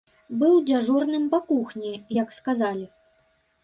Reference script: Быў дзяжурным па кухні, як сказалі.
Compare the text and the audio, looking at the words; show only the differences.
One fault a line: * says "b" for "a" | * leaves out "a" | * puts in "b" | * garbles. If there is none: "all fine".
all fine